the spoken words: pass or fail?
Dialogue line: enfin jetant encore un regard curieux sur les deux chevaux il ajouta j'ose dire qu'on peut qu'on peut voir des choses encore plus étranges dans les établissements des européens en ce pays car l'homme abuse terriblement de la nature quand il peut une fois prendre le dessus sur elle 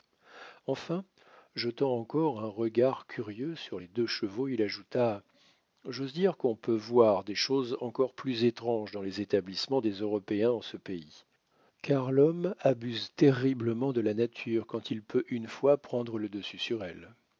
fail